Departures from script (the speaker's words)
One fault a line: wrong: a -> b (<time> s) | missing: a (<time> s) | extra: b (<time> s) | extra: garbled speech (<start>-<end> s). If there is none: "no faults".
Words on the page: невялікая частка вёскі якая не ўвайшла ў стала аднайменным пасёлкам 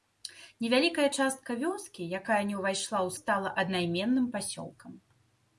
no faults